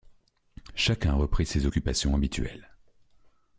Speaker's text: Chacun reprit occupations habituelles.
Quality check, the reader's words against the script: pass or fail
fail